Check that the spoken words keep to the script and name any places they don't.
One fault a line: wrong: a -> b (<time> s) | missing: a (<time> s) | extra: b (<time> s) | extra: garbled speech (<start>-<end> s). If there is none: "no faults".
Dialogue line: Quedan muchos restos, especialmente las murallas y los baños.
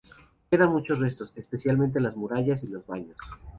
no faults